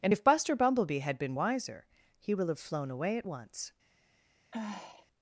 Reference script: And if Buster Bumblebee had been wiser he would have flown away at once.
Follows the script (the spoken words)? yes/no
no